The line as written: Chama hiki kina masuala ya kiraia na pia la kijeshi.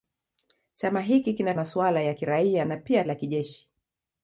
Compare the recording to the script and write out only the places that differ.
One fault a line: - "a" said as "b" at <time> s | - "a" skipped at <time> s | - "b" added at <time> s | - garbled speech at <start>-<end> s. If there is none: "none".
none